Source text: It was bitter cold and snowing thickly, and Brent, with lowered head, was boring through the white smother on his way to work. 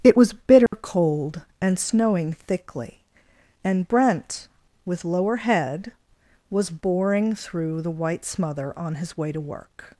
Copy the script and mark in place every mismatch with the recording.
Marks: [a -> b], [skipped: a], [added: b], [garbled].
It was bitter cold and snowing thickly, and Brent, with [lowered -> lower] head, was boring through the white smother on his way to work.